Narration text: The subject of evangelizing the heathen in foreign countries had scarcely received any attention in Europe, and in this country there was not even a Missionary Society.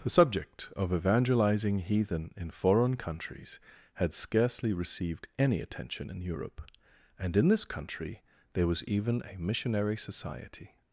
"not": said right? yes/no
no